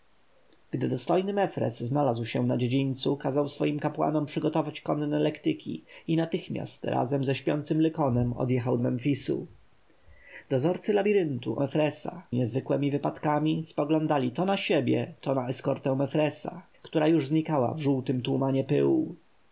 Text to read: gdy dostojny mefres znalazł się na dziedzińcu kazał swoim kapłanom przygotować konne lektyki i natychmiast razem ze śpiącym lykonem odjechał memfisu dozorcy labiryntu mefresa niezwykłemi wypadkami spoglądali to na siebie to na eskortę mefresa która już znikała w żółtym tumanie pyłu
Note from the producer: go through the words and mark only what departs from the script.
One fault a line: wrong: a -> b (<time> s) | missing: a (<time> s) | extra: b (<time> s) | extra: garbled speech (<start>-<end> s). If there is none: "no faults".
no faults